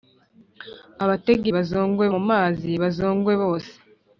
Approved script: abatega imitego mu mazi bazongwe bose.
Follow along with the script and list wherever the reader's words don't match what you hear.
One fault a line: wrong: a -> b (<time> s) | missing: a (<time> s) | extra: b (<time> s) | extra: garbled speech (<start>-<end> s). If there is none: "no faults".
wrong: imitego -> bazongwe (1.5 s)